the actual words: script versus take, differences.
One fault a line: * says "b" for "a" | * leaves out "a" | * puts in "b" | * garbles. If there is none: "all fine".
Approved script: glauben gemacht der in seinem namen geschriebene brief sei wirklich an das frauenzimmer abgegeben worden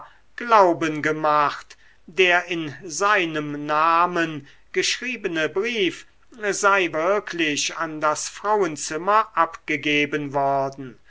all fine